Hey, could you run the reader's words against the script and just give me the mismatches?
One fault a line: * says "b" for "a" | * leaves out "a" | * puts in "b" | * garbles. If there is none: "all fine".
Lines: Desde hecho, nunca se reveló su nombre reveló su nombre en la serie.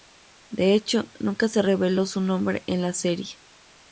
* says "De" for "Desde"
* leaves out "reveló su nombre"